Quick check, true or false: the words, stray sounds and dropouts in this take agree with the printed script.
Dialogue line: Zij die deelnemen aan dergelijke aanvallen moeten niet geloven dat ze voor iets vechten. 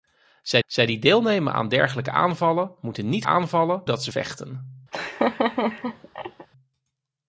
false